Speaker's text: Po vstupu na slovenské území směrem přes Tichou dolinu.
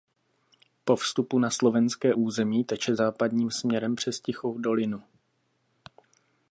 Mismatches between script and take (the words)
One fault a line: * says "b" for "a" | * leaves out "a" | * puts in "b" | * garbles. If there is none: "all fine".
* puts in "teče západním"